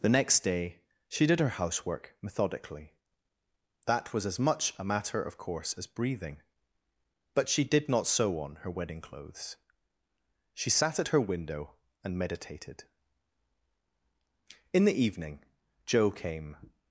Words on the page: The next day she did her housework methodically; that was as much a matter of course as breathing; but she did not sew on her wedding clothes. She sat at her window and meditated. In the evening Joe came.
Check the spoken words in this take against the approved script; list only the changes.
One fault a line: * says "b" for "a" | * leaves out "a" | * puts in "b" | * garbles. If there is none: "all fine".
all fine